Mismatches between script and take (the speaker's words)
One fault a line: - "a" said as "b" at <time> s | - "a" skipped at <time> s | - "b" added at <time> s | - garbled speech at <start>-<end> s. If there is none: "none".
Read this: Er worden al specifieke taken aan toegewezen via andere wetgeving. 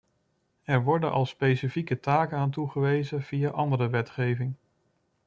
none